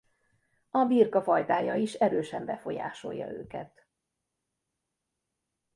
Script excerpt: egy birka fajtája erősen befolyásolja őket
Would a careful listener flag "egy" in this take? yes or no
yes